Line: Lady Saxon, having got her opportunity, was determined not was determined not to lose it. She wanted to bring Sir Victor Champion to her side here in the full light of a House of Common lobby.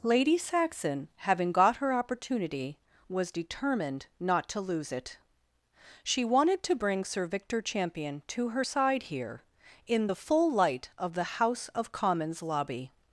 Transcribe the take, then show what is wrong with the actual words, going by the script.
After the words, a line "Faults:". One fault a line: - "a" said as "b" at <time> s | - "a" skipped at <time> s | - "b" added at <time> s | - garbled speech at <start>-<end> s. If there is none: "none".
Lady Saxon, having got her opportunity, was determined not to lose it. She wanted to bring Sir Victor Champion to her side here in the full light of the House of Commons lobby.
Faults:
- "was determined not" skipped at 4.5 s
- "a" said as "the" at 11.1 s
- "Common" said as "Commons" at 11.9 s